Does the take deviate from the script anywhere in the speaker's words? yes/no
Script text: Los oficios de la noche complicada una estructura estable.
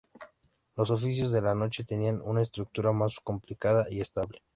yes